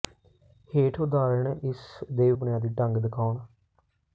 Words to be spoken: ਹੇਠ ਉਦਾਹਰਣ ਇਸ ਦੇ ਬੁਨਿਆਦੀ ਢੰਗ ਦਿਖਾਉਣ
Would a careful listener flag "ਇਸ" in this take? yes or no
no